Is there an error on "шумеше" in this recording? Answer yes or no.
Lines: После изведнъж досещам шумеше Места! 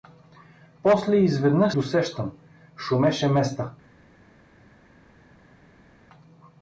no